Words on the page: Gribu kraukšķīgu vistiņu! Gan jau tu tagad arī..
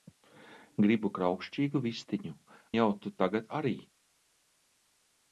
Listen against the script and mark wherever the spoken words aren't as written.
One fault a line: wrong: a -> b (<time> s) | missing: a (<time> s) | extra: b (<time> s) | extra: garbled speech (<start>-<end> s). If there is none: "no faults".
missing: Gan (2.3 s)